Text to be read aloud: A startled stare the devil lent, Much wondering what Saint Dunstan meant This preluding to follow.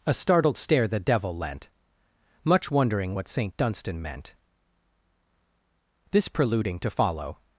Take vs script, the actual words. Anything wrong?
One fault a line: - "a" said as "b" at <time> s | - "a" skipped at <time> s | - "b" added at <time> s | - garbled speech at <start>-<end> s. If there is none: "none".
none